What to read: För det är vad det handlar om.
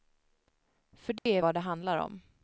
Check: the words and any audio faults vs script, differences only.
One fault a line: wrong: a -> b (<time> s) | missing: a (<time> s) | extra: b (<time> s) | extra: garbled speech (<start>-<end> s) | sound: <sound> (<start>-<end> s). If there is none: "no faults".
sound: dropout (1.2-1.3 s)